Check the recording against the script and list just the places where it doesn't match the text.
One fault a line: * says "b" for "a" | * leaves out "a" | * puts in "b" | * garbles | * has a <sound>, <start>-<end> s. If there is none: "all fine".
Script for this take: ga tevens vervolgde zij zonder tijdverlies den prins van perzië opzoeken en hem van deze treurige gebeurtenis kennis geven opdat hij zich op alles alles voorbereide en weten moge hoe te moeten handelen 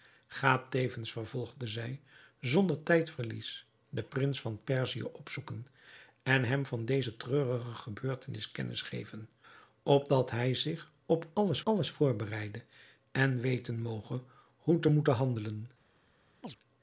* has a chirp, 16.4-16.6 s